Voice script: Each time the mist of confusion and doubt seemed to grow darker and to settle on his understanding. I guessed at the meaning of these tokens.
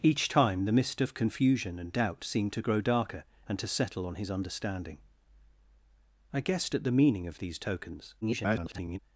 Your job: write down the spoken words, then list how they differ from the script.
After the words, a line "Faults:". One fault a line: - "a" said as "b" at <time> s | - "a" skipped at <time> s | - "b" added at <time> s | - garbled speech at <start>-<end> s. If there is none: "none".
Each time the mist of confusion and doubt seemed to grow darker and to settle on his understanding. I guessed at the meaning of these tokens. [garbled]
Faults:
- garbled speech at 8.2-9.0 s